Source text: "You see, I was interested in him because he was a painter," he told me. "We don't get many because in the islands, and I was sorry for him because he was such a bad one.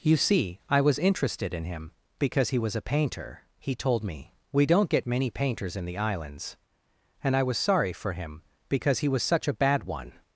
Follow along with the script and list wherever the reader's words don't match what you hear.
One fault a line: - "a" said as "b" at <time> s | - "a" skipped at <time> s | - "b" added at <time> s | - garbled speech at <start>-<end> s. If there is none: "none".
- "because" said as "painters" at 5.3 s